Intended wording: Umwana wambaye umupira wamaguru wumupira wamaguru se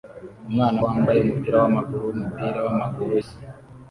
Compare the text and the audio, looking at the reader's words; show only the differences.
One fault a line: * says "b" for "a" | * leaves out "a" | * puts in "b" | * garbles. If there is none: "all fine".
all fine